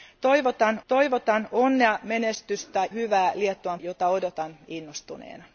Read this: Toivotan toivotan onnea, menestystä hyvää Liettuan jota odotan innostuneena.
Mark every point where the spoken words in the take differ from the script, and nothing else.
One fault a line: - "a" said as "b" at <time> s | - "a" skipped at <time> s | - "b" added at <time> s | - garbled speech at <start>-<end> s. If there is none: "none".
none